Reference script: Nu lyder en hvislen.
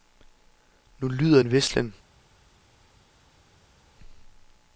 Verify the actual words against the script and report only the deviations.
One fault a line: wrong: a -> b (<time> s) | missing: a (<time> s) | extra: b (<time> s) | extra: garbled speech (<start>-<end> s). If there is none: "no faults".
no faults